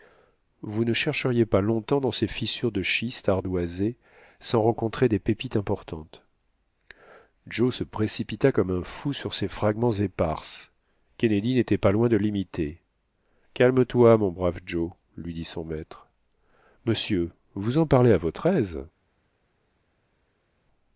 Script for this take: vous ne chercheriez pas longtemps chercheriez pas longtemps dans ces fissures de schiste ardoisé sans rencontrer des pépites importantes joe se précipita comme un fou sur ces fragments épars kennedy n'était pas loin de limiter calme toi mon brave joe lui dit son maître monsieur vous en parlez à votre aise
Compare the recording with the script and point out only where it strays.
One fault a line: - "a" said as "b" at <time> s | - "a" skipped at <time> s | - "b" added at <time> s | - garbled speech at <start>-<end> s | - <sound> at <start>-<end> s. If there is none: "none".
- "chercheriez pas longtemps" skipped at 2.0 s